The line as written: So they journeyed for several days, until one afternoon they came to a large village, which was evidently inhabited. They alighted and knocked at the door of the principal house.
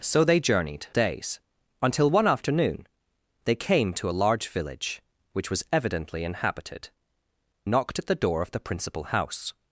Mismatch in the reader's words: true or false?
true